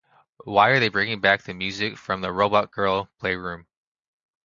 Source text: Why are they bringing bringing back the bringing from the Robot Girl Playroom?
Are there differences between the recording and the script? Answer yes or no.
yes